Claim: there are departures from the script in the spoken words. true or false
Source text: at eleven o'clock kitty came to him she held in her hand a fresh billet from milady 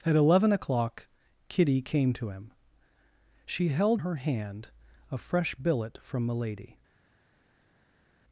true